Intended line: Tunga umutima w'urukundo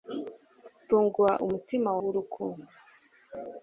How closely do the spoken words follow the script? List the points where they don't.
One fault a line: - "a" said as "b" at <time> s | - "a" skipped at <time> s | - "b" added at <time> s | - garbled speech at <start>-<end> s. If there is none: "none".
none